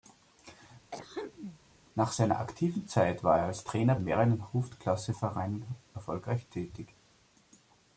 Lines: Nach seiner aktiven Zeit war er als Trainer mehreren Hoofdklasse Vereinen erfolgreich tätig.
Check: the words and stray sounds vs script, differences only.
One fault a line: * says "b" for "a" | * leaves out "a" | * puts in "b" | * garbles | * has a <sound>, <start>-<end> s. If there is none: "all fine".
* has a throat clearing, 0.9-1.6 s